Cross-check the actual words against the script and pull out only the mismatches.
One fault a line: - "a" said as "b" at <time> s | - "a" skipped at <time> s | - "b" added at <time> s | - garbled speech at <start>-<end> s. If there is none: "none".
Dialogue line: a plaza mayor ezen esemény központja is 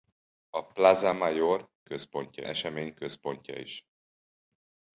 - "ezen" said as "központja" at 1.8 s